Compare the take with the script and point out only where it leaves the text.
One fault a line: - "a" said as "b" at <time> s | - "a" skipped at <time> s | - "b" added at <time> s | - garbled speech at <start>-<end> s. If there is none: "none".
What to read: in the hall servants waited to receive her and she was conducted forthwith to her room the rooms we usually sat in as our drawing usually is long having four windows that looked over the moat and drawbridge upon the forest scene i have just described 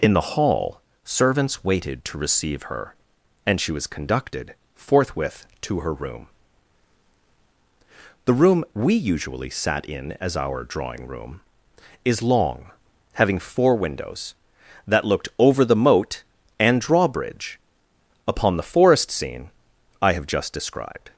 - "rooms" said as "room" at 8.3 s
- "usually" said as "room" at 11.1 s